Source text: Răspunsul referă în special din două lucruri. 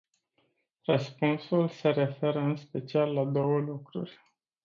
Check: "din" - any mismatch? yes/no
yes